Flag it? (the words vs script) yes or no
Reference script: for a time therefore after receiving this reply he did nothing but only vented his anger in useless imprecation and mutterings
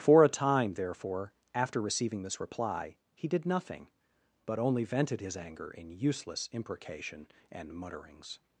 no